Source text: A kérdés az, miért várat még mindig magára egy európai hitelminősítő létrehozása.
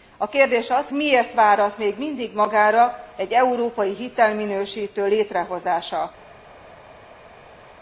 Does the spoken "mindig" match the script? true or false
true